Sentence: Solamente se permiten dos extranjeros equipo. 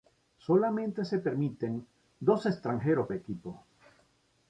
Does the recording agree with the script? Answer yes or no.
yes